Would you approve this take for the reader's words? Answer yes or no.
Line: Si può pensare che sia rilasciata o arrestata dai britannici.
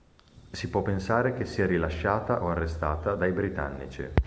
yes